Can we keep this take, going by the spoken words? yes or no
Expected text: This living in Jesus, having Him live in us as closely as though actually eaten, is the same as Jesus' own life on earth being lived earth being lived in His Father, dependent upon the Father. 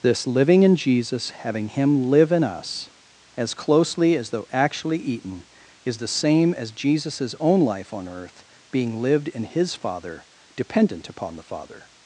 no